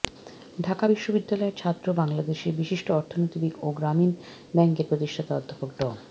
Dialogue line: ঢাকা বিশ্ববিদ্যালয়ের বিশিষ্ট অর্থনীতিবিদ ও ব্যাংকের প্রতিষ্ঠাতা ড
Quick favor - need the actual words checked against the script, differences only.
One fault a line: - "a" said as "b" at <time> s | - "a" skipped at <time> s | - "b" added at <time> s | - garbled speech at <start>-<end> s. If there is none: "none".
- "ছাত্র বাংলাদেশের" added at 1.6 s
- "গ্রামীণ" added at 3.7 s
- "অধ্যাপক" added at 5.3 s